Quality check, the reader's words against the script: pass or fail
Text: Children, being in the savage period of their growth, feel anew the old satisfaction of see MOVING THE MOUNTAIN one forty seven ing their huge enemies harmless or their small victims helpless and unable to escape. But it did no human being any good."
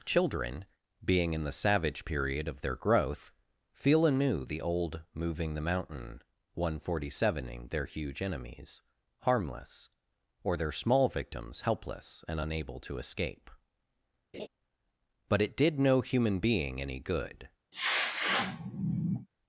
fail